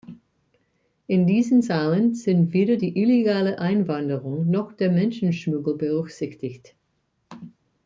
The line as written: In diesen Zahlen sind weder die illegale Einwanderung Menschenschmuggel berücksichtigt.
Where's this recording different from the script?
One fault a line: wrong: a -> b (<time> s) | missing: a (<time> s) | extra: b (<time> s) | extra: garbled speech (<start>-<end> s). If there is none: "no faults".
extra: noch der (4.5 s)